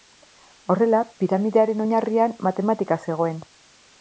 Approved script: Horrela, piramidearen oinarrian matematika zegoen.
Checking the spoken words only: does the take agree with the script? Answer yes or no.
yes